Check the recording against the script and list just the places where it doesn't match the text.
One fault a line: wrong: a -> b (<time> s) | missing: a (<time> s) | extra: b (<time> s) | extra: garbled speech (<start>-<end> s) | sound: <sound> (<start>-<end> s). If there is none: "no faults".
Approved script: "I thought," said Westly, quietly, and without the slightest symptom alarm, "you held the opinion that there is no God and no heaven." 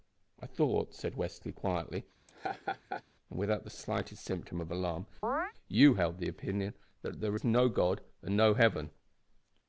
sound: laugh (2.3-3.0 s)
extra: of (4.6 s)
sound: chirp (5.2-5.5 s)